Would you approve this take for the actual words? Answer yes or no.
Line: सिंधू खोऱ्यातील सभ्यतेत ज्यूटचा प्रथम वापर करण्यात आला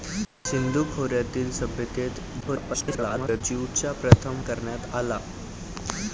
no